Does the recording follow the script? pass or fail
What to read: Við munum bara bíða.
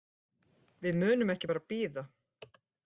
fail